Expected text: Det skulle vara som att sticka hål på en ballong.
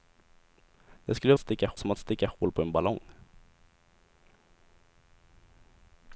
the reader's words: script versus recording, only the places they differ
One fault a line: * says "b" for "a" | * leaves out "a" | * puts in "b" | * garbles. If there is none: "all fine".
* says "sticka" for "vara"